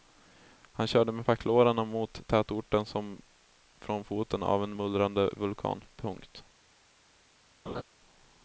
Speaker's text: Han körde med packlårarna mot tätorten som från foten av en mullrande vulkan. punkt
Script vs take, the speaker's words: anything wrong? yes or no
no